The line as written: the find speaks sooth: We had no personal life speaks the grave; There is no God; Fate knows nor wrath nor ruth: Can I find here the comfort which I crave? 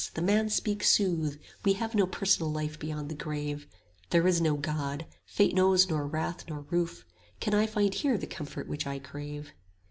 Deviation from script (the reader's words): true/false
true